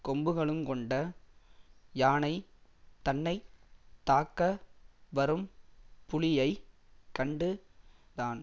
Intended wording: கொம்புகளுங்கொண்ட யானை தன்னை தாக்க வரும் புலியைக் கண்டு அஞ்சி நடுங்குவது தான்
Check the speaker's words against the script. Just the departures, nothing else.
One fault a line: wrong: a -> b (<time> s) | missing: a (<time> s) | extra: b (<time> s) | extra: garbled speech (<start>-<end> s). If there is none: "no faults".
missing: அஞ்சி நடுங்குவது (7.5 s)